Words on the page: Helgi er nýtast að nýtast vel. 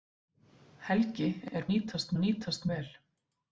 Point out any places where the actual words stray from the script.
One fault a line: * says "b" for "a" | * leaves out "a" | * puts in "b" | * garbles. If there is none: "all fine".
all fine